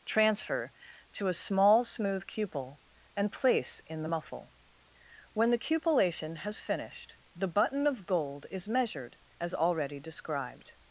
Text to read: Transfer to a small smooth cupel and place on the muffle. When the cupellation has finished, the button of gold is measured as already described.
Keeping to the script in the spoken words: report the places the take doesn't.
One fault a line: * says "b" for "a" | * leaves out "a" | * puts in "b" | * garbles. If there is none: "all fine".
* says "in" for "on"